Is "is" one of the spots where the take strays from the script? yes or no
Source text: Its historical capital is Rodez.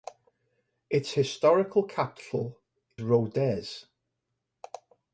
yes